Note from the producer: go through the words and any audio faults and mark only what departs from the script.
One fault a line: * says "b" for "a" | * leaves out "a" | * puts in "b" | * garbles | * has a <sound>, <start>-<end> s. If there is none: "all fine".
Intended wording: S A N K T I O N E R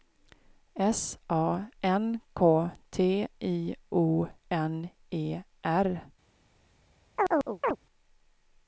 * has a chirp, 7.2-7.8 s